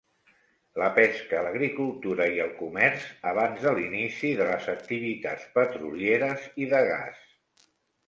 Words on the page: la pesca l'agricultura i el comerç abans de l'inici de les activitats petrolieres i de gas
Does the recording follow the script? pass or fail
pass